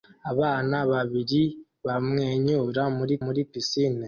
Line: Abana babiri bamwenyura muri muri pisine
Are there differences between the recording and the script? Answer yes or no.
no